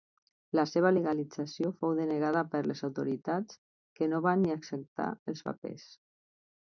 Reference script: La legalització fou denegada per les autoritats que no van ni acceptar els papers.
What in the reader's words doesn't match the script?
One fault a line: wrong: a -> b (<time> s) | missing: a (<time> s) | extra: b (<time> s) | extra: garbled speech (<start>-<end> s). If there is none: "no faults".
extra: seva (0.7 s)